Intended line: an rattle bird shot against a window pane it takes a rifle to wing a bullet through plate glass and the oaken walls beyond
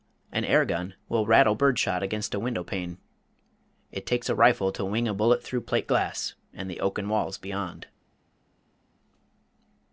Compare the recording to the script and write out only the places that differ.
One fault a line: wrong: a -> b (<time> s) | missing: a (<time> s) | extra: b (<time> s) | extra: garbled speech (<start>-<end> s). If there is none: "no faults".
extra: air gun will (0.5 s)